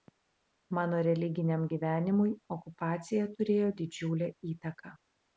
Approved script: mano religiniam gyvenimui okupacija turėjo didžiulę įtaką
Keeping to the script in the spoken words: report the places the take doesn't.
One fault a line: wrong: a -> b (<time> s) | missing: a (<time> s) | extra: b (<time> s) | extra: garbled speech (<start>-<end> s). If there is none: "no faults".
no faults